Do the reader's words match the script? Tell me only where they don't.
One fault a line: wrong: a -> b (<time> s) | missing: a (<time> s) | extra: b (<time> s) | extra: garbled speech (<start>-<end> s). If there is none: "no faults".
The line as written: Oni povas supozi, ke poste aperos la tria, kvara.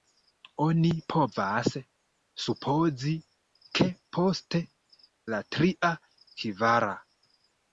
missing: aperos (4.6 s)